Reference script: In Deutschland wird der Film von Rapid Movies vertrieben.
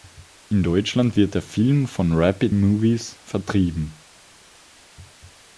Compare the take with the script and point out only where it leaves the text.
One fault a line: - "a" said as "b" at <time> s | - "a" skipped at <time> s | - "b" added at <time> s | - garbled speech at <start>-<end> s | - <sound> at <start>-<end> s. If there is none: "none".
none